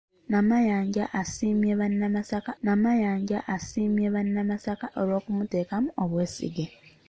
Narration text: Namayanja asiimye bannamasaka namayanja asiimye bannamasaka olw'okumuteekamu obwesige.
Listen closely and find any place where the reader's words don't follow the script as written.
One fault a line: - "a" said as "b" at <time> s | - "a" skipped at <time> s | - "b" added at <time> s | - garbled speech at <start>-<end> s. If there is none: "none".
none